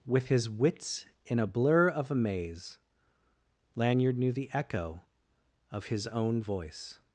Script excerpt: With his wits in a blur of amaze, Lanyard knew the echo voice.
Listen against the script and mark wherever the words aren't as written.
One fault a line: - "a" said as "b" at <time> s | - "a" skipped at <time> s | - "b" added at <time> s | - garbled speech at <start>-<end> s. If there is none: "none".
- "of his own" added at 5.7 s